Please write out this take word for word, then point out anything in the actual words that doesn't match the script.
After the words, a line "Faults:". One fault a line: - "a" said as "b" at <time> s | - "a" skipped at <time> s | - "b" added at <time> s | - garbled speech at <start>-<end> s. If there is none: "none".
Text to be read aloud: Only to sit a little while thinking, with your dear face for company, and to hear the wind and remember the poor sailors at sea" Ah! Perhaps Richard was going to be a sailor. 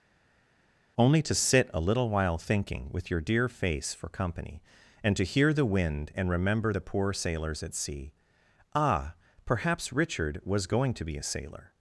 Only to sit a little while thinking, with your dear face for company, and to hear the wind and remember the poor sailors at sea" Ah! Perhaps Richard was going to be a sailor.
Faults:
none